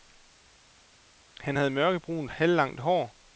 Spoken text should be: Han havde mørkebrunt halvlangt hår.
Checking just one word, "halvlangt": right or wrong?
right